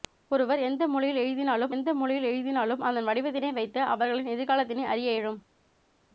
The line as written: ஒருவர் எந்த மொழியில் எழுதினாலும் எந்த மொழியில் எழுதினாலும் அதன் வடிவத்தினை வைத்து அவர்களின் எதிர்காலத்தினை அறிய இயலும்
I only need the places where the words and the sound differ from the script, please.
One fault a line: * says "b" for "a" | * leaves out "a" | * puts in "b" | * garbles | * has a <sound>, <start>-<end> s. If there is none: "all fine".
all fine